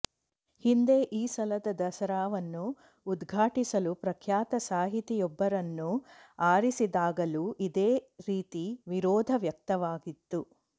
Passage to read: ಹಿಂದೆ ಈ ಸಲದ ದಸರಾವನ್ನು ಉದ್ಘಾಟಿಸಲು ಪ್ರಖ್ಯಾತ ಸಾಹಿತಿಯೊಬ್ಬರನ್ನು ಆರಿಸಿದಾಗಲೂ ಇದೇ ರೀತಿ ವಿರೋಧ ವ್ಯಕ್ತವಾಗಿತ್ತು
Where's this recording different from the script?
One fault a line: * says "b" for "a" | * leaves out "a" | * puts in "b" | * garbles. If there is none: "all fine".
all fine